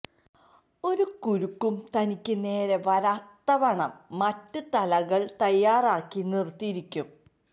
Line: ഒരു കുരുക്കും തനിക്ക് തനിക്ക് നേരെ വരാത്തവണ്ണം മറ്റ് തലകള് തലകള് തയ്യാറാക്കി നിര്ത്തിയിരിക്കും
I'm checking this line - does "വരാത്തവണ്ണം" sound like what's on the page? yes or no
yes